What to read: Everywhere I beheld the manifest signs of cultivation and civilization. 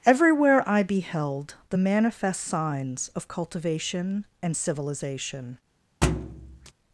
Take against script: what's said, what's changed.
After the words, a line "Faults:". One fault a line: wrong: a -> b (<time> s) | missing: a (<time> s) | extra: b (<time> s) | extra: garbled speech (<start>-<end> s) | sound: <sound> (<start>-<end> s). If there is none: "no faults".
Everywhere I beheld the manifest signs of cultivation and civilization.
Faults:
sound: thud (6.0-6.7 s)